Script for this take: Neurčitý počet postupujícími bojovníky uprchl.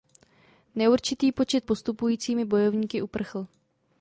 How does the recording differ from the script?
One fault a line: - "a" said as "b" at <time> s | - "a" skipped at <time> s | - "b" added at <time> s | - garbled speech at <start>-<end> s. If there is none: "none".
none